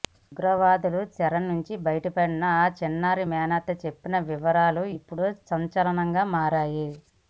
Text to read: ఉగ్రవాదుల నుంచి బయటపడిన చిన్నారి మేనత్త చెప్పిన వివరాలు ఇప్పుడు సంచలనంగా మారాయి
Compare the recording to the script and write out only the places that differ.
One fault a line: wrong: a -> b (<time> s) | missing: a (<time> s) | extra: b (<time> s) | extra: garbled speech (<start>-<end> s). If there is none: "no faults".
extra: చెర (1.1 s)
extra: ఆ (2.5 s)